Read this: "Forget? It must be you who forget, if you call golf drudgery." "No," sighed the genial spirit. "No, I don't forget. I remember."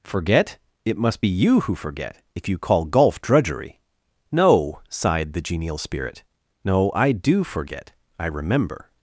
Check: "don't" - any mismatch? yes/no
yes